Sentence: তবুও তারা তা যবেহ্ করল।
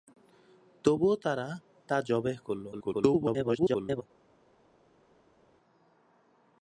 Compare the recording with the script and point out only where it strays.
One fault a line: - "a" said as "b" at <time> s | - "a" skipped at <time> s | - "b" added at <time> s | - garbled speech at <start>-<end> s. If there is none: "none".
- garbled speech at 2.7-4.0 s